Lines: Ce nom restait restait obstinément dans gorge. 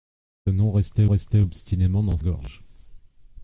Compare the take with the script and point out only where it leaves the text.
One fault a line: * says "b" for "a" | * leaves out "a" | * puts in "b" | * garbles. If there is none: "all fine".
all fine